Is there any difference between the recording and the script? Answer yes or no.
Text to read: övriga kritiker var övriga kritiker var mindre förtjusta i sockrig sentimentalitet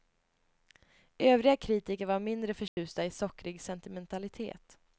yes